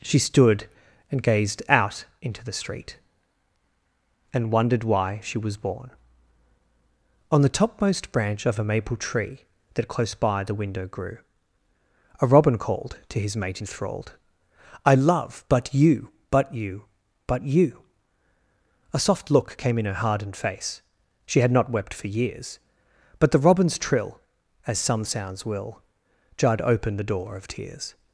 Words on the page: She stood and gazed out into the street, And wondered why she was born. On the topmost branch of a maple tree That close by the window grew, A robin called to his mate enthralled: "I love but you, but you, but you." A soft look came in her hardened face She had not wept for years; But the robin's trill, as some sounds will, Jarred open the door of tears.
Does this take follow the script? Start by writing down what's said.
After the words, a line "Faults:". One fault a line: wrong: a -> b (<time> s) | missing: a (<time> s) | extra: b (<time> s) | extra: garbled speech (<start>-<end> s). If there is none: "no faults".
She stood and gazed out into the street, And wondered why she was born. On the topmost branch of a maple tree That close by the window grew, A robin called to his mate enthralled: "I love but you, but you, but you." A soft look came in her hardened face She had not wept for years; But the robin's trill, as some sounds will, Jarred open the door of tears.
Faults:
no faults